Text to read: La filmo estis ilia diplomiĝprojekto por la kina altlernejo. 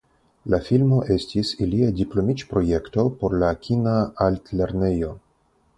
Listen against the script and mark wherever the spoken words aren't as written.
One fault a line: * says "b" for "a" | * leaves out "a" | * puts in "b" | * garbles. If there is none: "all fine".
all fine